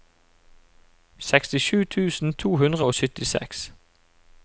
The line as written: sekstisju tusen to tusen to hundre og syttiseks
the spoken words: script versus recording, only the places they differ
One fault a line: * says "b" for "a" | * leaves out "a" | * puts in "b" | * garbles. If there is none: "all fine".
* leaves out "tusen to"